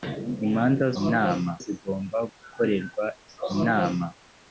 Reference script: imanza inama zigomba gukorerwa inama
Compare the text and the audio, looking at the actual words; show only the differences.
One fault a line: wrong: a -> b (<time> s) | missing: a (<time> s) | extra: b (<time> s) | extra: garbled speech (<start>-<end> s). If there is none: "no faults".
no faults